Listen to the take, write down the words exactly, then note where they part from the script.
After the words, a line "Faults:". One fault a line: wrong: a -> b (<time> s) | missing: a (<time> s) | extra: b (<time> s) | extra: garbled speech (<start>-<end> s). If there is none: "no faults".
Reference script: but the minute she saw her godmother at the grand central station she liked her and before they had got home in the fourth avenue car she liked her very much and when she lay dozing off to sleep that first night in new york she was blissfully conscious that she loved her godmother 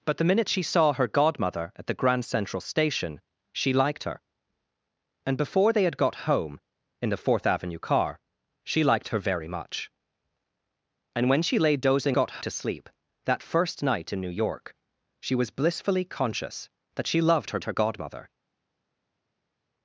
but the minute she saw her godmother at the grand central station she liked her and before they had got home in the fourth avenue car she liked her very much and when she lay dozing got to sleep that first night in new york she was blissfully conscious that she loved her her godmother
Faults:
wrong: off -> got (12.1 s)
extra: her (17.6 s)